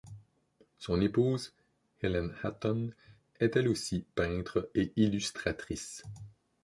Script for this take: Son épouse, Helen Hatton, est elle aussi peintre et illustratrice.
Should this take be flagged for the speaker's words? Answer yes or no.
no